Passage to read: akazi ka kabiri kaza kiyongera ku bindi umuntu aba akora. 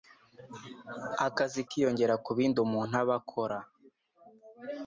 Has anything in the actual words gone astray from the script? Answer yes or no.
yes